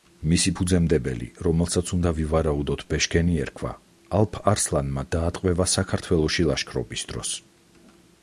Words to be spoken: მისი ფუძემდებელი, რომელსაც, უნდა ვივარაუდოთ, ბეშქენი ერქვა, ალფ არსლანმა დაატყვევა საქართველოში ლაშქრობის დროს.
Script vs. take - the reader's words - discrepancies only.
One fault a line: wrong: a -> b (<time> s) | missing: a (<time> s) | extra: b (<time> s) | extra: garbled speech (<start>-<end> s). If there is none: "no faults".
no faults